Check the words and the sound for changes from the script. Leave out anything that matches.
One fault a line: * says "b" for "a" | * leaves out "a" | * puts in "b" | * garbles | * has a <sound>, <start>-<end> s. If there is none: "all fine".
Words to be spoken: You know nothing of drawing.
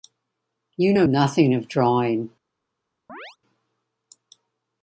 * has a chirp, 3.1-3.4 s